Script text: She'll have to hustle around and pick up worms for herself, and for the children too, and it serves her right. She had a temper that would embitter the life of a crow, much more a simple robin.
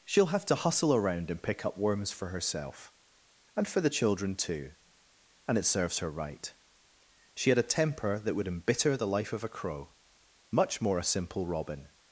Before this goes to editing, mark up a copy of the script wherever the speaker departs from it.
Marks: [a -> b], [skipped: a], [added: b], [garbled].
She'll have to hustle around and pick up worms for herself, and for the children too, and it serves her right. She had a temper that would embitter the life of a crow, much more a simple robin.